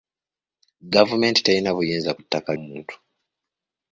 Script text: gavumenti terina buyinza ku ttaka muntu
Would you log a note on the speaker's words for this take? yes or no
no